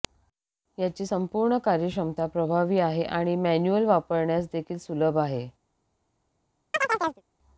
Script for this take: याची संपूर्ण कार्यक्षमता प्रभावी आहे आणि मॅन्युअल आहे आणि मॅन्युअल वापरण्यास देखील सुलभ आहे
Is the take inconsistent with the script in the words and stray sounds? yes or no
yes